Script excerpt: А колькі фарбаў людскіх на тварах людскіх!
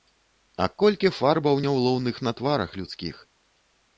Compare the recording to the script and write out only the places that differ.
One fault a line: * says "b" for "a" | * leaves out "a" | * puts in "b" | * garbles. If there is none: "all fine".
* says "няўлоўных" for "людскіх"